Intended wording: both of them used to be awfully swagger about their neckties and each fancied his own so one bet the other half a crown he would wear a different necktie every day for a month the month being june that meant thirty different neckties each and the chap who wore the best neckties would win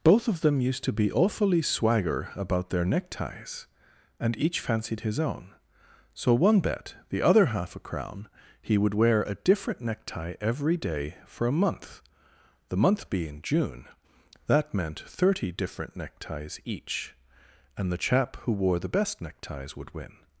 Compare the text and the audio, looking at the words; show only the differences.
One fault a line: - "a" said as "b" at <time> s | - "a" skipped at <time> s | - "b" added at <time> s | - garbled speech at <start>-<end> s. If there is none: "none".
none